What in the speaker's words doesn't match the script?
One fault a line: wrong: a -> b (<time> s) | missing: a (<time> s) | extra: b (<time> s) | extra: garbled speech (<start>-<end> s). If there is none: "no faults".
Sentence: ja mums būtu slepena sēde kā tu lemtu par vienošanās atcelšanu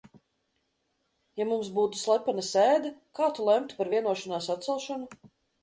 no faults